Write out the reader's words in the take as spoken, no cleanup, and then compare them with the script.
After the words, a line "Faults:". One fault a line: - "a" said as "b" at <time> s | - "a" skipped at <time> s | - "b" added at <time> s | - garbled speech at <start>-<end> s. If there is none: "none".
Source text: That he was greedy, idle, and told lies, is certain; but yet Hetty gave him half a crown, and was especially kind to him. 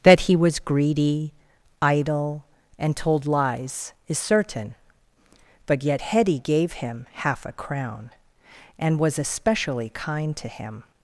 That he was greedy, idle, and told lies, is certain; but yet Hetty gave him half a crown, and was especially kind to him.
Faults:
none